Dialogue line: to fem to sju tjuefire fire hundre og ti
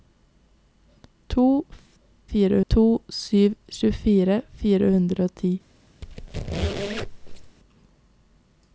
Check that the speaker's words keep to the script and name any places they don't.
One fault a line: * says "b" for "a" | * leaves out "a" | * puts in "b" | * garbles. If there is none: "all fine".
* says "fire" for "fem"